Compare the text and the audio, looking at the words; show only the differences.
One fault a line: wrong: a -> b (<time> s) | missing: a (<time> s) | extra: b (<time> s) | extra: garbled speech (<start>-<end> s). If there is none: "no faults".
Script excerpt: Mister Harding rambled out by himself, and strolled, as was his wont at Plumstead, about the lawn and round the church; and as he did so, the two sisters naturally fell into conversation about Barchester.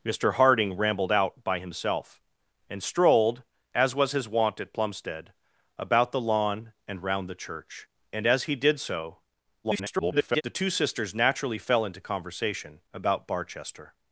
extra: garbled speech (9.6-10.4 s)